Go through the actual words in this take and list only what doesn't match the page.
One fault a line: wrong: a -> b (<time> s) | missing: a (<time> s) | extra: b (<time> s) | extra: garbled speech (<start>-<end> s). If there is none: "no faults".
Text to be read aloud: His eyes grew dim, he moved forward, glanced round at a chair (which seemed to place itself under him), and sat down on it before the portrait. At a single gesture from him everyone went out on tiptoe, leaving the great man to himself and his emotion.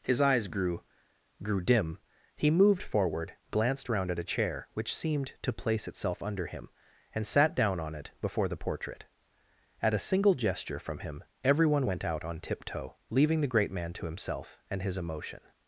extra: grew (1.4 s)